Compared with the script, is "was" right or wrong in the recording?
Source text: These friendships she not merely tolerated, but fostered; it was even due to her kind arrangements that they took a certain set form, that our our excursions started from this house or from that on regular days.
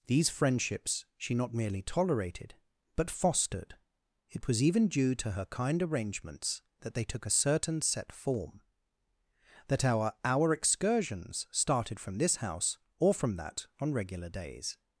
right